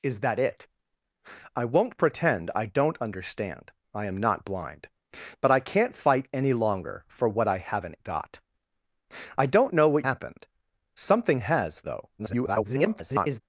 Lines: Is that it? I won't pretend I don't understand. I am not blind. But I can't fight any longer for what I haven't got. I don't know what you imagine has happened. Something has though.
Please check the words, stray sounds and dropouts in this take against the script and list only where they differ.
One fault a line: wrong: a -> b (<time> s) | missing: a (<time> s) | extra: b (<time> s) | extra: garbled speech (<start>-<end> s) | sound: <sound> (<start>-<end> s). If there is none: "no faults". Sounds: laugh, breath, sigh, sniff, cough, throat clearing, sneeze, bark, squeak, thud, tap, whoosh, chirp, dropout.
missing: you imagine has (10.1 s)
extra: garbled speech (12.2-13.4 s)